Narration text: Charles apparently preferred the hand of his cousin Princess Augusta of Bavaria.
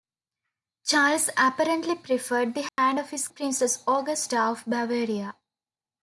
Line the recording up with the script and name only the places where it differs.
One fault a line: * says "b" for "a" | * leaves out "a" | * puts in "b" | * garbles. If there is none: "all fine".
* leaves out "cousin"